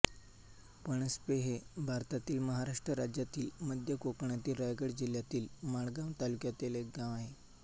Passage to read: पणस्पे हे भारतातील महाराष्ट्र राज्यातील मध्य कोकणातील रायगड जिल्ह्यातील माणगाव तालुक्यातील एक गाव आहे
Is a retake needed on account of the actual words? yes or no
no